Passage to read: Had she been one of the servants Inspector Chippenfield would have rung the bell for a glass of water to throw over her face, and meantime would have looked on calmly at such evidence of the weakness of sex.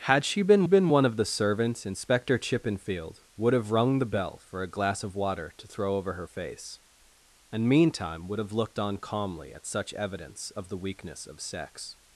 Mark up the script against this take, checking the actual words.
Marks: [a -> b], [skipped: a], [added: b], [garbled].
Had she been [added: been] one of the servants Inspector Chippenfield would have rung the bell for a glass of water to throw over her face, and meantime would have looked on calmly at such evidence of the weakness of sex.